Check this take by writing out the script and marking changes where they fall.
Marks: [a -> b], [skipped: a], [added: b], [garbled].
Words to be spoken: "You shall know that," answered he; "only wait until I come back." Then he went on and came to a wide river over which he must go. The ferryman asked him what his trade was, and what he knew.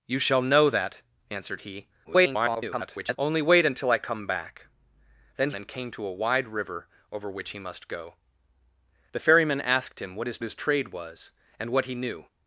"You shall know that," answered he; [garbled] "only wait until I come back." Then [skipped: he went on] and came to a wide river over which he must go. The ferryman asked him what his [added: his] trade was, and what he knew.